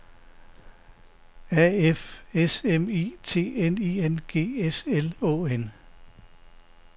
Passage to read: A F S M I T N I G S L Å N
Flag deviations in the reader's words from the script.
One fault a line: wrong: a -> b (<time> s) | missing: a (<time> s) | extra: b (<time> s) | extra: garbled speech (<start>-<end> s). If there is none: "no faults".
extra: N (4.0 s)